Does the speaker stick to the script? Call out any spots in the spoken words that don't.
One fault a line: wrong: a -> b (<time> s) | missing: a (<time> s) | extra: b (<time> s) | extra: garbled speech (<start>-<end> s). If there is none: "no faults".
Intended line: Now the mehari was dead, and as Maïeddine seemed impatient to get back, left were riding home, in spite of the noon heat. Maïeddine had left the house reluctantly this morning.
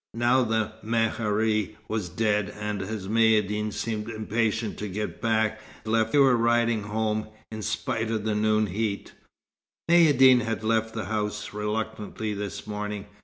no faults